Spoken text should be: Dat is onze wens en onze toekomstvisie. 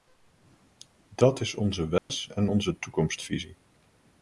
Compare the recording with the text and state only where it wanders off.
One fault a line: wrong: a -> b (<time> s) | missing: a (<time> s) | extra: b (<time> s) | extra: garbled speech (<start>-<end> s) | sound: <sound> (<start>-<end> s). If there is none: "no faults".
sound: dropout (2.0-2.1 s)